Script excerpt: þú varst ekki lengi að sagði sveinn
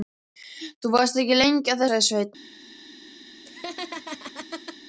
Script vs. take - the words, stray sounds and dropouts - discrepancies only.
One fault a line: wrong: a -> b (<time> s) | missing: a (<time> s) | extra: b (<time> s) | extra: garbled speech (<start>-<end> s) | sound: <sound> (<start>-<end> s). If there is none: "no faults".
sound: laugh (3.5-4.8 s)